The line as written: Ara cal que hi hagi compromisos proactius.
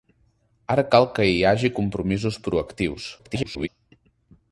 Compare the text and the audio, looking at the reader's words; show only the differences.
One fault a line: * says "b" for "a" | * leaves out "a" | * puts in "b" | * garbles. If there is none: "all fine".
* garbles